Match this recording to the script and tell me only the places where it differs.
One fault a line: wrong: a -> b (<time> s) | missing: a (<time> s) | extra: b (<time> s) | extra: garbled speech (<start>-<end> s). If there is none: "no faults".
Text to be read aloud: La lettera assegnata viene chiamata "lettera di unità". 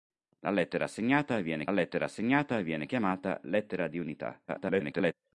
extra: lettera assegnata viene (1.7 s)
extra: garbled speech (4.5-5.1 s)